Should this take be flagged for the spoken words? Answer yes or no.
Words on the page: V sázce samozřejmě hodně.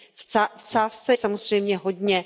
no